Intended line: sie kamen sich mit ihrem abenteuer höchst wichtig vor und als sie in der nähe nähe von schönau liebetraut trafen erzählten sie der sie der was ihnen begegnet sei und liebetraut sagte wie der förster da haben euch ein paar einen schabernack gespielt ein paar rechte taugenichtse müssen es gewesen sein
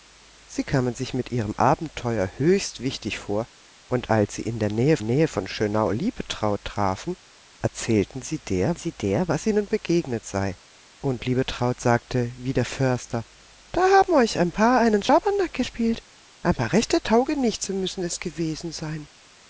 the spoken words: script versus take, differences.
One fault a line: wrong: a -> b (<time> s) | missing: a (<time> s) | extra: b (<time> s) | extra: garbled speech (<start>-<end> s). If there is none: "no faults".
no faults